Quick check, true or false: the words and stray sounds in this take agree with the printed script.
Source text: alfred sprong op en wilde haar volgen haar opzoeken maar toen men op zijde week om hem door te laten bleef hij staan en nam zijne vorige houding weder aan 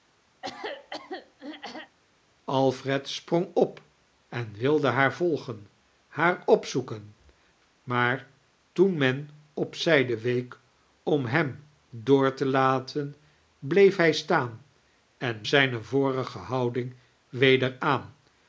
false